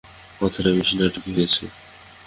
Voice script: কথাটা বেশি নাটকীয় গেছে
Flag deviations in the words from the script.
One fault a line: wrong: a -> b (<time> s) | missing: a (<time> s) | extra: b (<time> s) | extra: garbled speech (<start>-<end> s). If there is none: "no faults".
no faults